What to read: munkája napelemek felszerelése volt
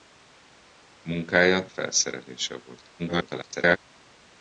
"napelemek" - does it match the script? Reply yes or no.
no